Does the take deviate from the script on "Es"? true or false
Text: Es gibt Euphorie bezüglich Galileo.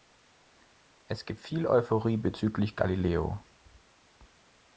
false